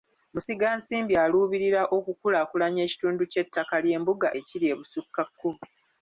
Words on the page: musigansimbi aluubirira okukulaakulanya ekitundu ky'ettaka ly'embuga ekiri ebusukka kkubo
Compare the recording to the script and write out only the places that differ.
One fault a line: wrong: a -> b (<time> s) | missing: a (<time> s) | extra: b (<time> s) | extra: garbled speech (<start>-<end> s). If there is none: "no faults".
no faults